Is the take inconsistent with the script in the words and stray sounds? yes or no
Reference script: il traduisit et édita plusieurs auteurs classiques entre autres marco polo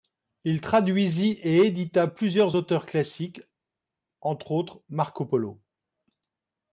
no